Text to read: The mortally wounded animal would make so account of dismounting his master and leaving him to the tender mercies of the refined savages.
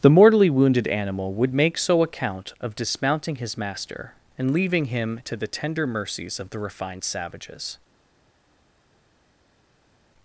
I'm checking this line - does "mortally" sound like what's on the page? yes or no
yes